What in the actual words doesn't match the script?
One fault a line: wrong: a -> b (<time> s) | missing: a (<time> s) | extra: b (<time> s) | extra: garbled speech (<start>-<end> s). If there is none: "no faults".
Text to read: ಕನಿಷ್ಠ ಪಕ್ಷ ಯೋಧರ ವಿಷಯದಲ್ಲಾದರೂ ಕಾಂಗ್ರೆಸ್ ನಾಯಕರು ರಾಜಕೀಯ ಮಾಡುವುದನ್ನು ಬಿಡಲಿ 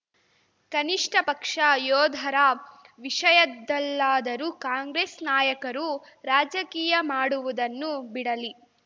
no faults